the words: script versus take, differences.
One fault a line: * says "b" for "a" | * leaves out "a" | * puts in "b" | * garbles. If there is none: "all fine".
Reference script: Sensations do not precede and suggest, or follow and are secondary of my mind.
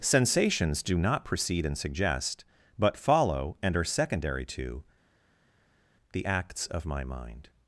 * says "but" for "or"
* puts in "to the acts"